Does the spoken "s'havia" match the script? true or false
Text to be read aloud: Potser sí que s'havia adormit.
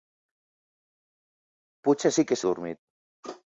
false